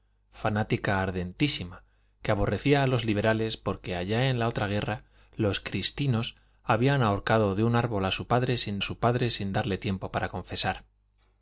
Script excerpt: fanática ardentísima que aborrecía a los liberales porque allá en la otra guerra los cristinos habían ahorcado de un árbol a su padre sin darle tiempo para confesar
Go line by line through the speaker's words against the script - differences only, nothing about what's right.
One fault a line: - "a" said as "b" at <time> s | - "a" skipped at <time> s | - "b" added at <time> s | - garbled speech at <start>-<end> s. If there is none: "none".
- "su padre sin" added at 8.8 s